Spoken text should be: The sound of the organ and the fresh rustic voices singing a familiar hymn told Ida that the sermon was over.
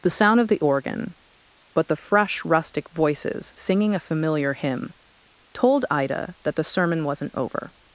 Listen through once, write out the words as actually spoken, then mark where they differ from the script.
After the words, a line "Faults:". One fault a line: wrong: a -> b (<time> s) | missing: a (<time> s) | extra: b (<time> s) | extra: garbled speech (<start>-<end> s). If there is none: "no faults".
The sound of the organ but the fresh rustic voices singing a familiar hymn told Ida that the sermon wasn't over.
Faults:
wrong: and -> but (1.7 s)
wrong: was -> wasn't (7.0 s)